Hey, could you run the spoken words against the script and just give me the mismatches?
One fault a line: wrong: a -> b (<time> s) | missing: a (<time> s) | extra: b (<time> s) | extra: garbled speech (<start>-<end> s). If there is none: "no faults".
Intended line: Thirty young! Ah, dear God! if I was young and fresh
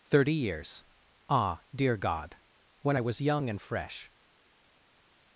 wrong: young -> years (0.3 s)
wrong: if -> when (2.8 s)